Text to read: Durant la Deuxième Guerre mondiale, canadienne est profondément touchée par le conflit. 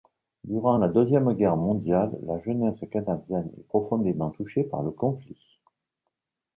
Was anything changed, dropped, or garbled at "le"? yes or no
no